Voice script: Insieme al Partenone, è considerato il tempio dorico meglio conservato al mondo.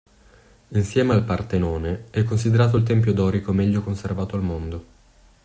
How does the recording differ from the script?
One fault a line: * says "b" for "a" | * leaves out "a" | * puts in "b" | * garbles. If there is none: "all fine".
all fine